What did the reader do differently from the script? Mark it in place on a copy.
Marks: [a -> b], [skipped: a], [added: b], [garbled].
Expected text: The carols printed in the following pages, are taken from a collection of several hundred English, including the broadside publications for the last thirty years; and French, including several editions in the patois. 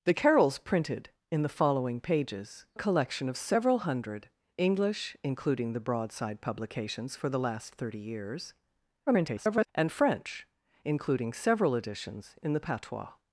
The carols printed in the following pages, [skipped: are taken from] a collection of several hundred English, including the broadside publications for the last thirty years; [garbled] and French, including several editions in the patois.